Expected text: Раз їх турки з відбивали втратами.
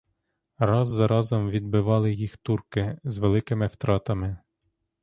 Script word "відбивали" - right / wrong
wrong